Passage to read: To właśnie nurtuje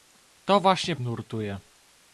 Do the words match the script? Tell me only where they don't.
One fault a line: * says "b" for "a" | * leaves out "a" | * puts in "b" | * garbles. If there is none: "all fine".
all fine